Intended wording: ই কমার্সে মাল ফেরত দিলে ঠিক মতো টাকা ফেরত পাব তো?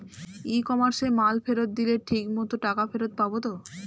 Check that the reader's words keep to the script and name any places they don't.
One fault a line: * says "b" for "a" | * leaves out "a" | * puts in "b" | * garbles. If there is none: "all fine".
all fine